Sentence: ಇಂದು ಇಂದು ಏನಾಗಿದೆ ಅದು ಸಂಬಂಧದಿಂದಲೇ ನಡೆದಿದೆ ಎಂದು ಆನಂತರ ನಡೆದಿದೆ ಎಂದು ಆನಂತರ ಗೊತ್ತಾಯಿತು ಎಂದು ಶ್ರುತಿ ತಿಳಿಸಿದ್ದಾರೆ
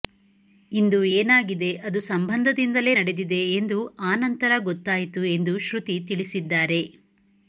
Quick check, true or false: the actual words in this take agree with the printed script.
false